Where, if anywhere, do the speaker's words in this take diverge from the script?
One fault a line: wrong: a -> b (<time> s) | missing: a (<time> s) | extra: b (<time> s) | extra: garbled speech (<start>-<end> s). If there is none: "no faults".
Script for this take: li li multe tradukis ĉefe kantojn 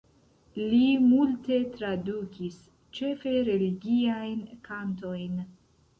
missing: li (0.8 s)
extra: religiajn (3.5 s)